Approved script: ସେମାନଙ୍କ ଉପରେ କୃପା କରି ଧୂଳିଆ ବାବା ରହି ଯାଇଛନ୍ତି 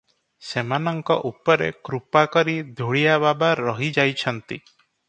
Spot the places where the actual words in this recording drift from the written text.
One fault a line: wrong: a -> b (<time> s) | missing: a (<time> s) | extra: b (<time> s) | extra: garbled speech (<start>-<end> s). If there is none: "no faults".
no faults